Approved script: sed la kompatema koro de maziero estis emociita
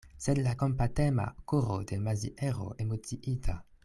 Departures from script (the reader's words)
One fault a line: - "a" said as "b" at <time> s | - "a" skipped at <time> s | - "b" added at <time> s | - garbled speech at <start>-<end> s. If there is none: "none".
- "estis" skipped at 2.7 s